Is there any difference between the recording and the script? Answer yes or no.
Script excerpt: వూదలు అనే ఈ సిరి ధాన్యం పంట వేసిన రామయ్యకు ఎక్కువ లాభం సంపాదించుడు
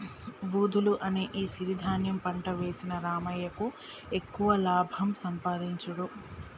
no